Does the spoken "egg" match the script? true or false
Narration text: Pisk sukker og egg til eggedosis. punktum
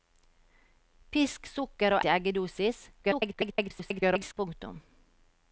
false